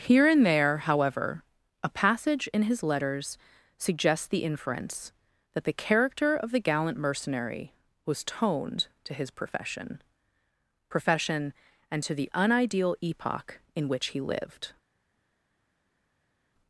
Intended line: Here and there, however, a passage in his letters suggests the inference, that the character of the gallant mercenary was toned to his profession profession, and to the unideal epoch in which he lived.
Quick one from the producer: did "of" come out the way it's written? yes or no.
yes